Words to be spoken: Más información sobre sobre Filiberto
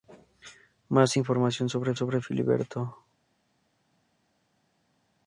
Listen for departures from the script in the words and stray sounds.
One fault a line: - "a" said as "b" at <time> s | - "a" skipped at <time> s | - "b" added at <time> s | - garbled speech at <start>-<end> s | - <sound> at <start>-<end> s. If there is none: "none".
none